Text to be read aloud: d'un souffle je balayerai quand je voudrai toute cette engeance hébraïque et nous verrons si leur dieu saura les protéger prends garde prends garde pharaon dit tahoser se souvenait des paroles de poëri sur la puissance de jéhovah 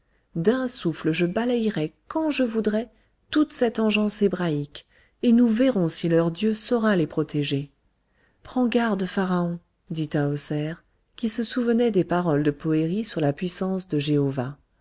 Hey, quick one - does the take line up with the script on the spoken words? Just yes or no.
no